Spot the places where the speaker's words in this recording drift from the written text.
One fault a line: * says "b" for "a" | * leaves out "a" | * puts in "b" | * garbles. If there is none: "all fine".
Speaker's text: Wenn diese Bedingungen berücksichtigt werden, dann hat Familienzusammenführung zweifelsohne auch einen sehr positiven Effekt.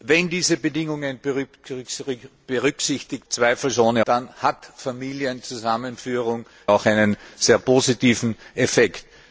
* says "zweifelsohne" for "werden"
* leaves out "zweifelsohne"